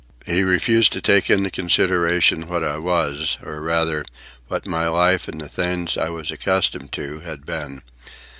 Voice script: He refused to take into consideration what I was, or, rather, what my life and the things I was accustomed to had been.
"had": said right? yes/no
yes